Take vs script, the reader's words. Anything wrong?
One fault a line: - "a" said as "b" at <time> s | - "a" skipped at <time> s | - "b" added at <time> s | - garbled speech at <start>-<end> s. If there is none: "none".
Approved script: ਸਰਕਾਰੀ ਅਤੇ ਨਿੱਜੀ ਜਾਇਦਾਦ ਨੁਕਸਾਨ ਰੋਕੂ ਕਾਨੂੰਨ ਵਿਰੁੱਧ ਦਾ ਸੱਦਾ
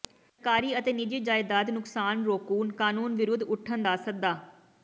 - "ਉੱਠਣ" added at 3.5 s